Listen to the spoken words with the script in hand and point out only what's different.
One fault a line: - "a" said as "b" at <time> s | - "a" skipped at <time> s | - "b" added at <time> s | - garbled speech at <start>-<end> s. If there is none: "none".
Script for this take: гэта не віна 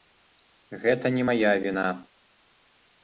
- "мая" added at 1.3 s